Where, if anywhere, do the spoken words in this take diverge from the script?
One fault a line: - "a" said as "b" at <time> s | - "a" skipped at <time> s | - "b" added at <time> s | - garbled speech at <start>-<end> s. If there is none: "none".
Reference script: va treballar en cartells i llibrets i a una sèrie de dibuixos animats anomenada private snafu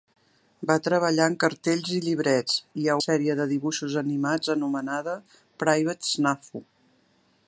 - "una" skipped at 3.0 s